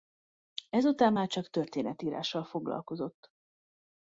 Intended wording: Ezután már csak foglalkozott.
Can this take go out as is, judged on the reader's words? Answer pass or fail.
fail